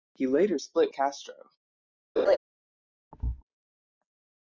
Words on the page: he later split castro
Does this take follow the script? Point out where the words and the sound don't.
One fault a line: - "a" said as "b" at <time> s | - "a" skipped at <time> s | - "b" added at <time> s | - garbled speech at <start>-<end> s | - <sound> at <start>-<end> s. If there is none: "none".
- laugh at 2.2-2.4 s
- thud at 3.1-3.4 s